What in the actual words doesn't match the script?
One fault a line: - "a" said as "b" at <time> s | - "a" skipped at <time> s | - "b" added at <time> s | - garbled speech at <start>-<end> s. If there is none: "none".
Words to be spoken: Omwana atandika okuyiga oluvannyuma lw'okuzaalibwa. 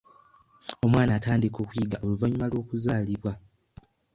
none